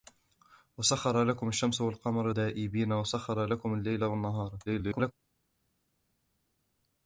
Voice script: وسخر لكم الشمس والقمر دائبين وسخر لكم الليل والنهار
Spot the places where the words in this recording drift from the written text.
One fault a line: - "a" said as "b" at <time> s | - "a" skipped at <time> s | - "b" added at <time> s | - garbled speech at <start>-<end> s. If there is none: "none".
- garbled speech at 4.7-5.1 s